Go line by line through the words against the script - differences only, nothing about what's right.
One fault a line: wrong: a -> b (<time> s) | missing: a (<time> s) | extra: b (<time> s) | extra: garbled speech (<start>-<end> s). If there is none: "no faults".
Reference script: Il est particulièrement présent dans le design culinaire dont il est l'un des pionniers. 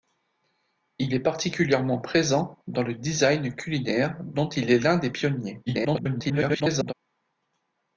extra: garbled speech (5.7-6.9 s)